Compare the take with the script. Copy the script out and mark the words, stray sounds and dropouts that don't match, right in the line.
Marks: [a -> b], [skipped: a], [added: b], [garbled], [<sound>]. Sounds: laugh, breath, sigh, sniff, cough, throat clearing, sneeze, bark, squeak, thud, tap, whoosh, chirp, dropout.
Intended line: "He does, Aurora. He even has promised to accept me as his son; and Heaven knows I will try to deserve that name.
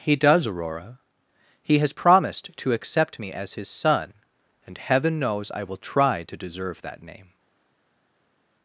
"He does, Aurora. He [skipped: even] has promised to accept me as his son; and Heaven knows I will try to deserve that name.